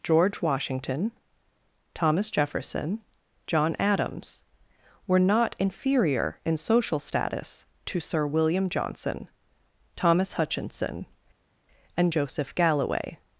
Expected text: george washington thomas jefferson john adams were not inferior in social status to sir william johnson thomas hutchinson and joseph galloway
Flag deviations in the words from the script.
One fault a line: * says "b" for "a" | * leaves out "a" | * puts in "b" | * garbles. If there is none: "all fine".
all fine